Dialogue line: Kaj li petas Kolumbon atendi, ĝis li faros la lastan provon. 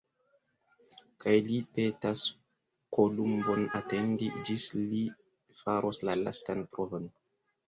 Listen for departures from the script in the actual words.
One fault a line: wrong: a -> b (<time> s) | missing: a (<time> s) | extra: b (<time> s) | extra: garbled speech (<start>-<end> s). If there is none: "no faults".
no faults